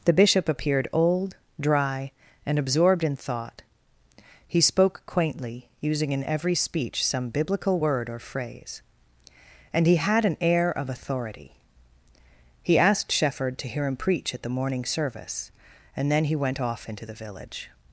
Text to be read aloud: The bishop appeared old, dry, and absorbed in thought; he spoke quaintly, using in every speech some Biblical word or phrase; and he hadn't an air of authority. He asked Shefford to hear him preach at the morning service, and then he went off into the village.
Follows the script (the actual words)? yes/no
no